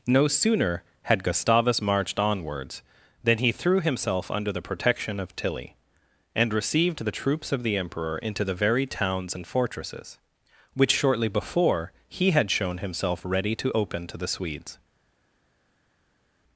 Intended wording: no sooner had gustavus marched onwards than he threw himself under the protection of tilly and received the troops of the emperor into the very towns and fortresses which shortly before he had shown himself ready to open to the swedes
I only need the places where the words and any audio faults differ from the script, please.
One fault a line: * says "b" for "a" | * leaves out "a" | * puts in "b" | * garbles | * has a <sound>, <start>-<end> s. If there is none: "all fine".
all fine